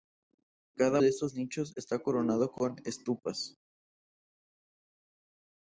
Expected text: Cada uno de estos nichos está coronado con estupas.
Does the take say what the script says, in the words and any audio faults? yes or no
no